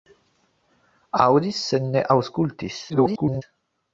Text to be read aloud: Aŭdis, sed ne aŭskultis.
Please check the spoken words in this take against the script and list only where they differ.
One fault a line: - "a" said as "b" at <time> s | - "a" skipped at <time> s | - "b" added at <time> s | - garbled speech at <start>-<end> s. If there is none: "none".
- garbled speech at 2.9-3.4 s